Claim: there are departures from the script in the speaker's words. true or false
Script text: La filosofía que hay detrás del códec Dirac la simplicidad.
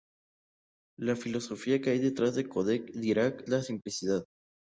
false